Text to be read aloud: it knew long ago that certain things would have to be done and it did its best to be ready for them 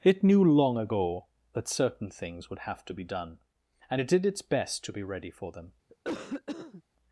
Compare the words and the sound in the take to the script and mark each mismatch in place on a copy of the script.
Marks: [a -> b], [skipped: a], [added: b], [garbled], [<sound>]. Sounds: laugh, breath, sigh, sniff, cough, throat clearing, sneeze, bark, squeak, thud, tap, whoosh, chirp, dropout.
it knew long ago that certain things would have to be done and it did its best to be ready for them [cough]